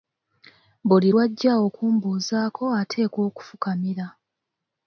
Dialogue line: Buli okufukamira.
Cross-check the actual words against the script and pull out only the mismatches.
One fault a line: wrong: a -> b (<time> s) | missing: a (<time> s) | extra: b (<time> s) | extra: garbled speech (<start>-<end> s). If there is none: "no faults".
extra: lw'ajja okumbuuzaako ateekwa (1.1 s)